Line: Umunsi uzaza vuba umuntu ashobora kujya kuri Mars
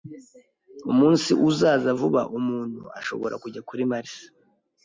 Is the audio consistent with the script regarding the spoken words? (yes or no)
yes